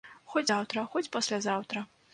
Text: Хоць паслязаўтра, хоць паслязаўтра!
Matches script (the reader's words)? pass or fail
fail